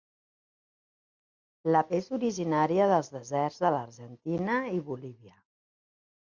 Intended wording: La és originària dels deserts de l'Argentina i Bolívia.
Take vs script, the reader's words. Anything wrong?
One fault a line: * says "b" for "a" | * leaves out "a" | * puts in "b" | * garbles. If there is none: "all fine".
all fine